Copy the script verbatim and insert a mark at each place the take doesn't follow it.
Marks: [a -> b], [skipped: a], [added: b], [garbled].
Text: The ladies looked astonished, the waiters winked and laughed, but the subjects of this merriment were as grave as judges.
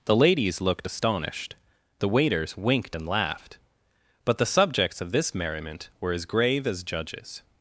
The ladies looked astonished, the waiters winked and laughed, but the subjects of this merriment were as grave as judges.